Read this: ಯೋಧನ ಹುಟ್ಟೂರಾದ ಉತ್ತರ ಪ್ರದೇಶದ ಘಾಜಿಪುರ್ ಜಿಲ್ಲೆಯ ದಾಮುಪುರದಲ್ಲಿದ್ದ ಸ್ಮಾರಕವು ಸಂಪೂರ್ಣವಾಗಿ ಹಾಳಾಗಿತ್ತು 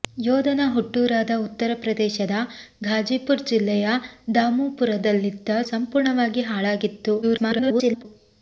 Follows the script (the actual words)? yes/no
no